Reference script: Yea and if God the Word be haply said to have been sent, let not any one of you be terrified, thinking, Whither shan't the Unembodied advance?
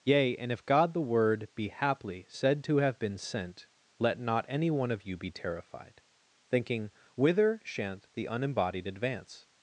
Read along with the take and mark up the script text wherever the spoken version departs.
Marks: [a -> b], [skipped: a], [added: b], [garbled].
Yea and if God the Word be haply said to have been sent, let not any one of you be terrified, thinking, Whither shan't the Unembodied advance?